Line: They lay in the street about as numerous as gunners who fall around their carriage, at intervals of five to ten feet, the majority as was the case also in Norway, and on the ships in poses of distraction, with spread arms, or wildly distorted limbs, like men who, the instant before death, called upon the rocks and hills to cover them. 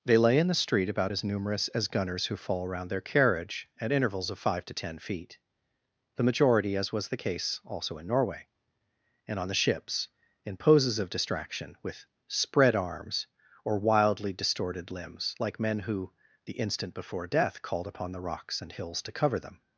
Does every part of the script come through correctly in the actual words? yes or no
yes